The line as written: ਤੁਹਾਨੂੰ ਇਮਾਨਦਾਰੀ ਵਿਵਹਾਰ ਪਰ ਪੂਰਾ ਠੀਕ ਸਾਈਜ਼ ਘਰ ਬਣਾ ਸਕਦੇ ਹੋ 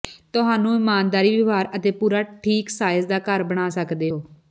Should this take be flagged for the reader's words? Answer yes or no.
yes